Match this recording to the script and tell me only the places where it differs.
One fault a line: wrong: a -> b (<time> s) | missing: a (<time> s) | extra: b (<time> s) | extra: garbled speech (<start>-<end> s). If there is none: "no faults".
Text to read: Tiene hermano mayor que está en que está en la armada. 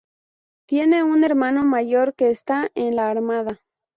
extra: un (1.0 s)
missing: que está en (3.0 s)